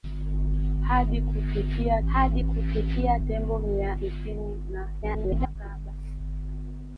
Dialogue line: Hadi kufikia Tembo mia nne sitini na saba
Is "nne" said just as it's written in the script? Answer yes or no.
no